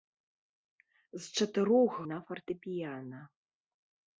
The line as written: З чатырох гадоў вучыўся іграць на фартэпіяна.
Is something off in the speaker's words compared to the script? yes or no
yes